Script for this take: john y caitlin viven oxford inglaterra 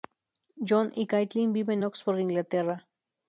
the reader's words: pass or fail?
pass